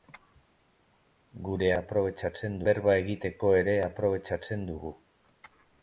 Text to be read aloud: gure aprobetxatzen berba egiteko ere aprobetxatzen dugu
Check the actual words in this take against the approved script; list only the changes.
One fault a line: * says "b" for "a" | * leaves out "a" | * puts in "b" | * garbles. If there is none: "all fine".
all fine